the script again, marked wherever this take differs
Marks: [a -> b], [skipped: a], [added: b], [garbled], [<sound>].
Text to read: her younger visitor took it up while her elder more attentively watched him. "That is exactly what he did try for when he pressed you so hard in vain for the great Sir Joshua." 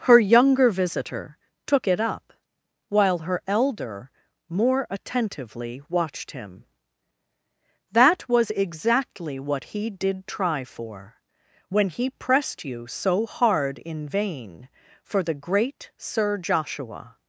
her younger visitor took it up while her elder more attentively watched him. "That [is -> was] exactly what he did try for when he pressed you so hard in vain for the great Sir Joshua."